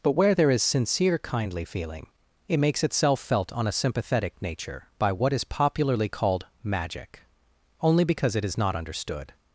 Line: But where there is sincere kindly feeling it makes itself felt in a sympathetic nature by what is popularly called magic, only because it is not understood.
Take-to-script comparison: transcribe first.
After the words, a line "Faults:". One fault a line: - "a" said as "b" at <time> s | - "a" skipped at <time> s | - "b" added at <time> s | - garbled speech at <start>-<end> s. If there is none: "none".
But where there is sincere kindly feeling it makes itself felt on a sympathetic nature by what is popularly called magic, only because it is not understood.
Faults:
- "in" said as "on" at 3.5 s